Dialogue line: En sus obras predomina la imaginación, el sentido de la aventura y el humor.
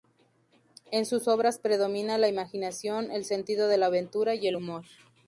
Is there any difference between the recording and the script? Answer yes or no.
no